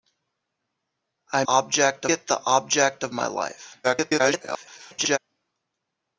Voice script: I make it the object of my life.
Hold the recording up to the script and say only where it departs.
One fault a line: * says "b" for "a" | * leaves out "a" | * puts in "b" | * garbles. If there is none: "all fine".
* says "object" for "make"
* garbles